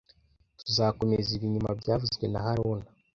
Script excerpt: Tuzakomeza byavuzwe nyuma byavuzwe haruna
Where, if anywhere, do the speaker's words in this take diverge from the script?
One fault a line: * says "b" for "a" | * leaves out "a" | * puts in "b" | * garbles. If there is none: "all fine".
* says "ibi" for "byavuzwe"
* puts in "na"